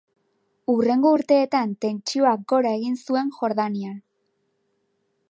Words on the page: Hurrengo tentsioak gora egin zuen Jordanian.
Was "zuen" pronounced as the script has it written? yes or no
yes